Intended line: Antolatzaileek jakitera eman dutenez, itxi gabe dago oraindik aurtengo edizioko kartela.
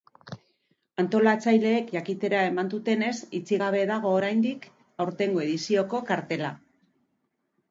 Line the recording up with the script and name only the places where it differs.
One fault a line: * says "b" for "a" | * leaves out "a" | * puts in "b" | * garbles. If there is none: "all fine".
all fine